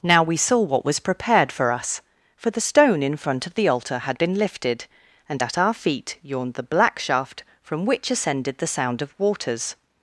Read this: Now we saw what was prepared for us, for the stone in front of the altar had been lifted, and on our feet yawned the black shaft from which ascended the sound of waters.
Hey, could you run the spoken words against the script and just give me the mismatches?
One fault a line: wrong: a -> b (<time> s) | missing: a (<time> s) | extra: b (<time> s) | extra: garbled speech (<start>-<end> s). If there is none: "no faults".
wrong: on -> at (5.4 s)